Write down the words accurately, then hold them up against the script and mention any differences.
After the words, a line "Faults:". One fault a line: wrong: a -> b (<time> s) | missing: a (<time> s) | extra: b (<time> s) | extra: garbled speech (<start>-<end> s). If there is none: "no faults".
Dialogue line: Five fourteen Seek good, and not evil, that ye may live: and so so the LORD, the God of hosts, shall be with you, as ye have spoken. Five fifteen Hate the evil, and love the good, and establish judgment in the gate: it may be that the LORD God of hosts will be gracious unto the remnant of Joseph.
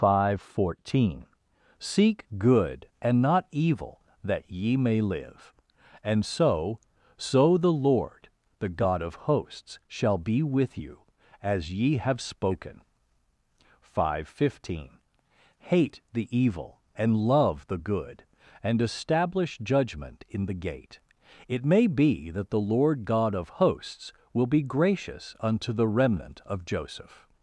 Five fourteen Seek good, and not evil, that ye may live: and so so the LORD, the God of hosts, shall be with you, as ye have spoken. Five fifteen Hate the evil, and love the good, and establish judgment in the gate: it may be that the LORD God of hosts will be gracious unto the remnant of Joseph.
Faults:
no faults